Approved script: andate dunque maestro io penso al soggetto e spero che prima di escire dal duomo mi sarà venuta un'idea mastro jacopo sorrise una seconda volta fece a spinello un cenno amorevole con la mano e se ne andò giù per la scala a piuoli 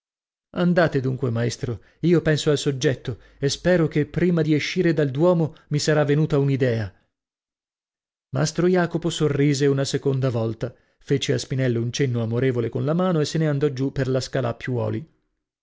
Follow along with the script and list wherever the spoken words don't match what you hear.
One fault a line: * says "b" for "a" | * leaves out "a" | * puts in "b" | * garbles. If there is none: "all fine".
all fine